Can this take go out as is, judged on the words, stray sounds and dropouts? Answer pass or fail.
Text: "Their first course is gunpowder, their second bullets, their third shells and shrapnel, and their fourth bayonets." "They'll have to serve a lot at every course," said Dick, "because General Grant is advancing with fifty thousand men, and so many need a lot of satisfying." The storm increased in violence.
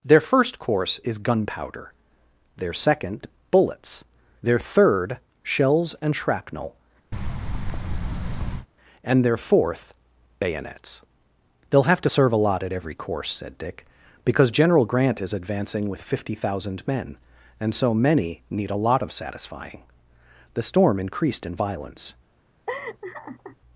fail